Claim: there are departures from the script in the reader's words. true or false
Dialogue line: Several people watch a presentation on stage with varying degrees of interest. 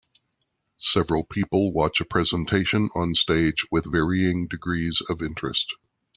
false